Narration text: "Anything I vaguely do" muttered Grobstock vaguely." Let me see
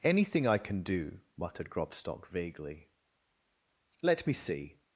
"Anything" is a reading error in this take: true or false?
false